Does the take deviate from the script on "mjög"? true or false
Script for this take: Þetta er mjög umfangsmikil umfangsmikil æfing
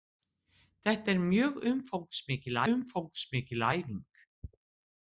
false